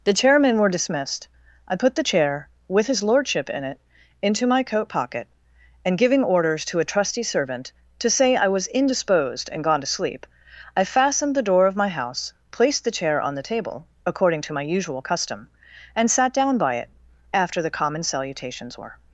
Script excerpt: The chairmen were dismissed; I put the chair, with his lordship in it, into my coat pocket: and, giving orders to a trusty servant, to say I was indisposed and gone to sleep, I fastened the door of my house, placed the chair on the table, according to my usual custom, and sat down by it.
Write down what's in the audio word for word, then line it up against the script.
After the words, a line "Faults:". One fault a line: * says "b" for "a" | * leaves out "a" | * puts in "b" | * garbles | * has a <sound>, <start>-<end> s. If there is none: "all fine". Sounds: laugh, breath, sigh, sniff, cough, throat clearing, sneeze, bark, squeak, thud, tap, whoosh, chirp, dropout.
The chairmen were dismissed; I put the chair, with his lordship in it, into my coat pocket: and, giving orders to a trusty servant, to say I was indisposed and gone to sleep, I fastened the door of my house, placed the chair on the table, according to my usual custom, and sat down by it. After the common salutations were
Faults:
* puts in "After the common salutations were"